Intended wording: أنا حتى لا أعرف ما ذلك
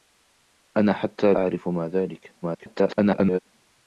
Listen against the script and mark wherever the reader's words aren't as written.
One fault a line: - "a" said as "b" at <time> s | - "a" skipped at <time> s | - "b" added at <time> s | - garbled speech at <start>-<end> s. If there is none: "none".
- "لا" skipped at 1.3 s
- garbled speech at 2.4-3.4 s